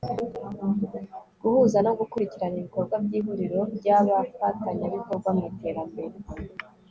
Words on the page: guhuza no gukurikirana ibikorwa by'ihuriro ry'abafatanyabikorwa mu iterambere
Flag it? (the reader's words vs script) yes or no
no